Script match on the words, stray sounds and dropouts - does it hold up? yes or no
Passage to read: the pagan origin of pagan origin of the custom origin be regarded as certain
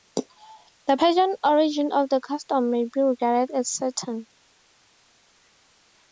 no